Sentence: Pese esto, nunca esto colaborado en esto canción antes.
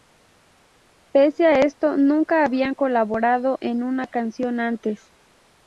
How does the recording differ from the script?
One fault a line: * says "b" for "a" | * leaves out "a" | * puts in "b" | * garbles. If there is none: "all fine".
* puts in "a"
* says "habían" for "esto"
* says "una" for "esto"